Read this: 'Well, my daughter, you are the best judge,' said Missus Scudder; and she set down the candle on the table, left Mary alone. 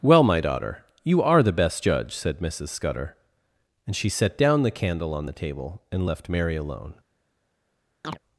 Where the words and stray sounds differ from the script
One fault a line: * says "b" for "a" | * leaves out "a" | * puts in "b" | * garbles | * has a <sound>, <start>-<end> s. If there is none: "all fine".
* puts in "and"
* has a chirp, 8.0-8.2 s